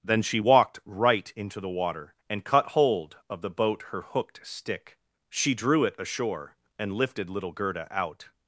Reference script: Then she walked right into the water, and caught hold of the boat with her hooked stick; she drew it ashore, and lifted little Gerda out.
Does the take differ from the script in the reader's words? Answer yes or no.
yes